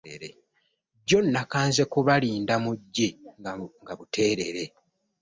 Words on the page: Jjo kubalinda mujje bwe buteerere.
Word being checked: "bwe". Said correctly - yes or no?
no